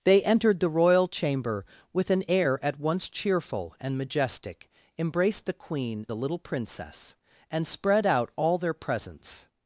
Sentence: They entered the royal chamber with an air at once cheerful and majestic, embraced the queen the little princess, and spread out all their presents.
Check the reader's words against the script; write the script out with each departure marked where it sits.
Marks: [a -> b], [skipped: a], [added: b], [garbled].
They entered the royal chamber with an air at once cheerful and majestic, embraced the queen the little princess, and spread out all their presents.